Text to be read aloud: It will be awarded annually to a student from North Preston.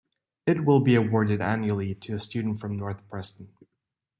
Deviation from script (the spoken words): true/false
false